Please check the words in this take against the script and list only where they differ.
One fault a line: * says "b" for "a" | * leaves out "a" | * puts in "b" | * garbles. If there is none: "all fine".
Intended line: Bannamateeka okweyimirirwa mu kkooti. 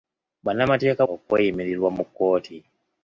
all fine